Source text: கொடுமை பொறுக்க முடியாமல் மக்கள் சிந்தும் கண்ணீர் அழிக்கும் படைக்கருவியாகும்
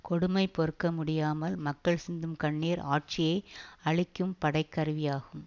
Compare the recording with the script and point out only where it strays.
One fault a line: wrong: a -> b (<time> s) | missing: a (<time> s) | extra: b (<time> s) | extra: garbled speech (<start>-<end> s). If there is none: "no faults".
extra: ஆட்சியை (2.8 s)